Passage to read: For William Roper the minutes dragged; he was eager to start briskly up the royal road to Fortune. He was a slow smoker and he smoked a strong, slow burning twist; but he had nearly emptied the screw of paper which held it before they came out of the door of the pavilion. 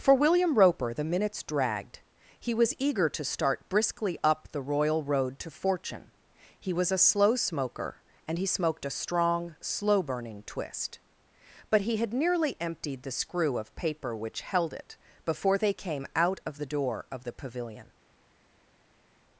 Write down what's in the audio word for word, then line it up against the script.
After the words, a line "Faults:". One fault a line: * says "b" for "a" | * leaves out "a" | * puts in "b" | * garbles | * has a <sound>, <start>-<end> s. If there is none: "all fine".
For William Roper the minutes dragged; he was eager to start briskly up the royal road to Fortune. He was a slow smoker and he smoked a strong, slow burning twist; but he had nearly emptied the screw of paper which held it before they came out of the door of the pavilion.
Faults:
all fine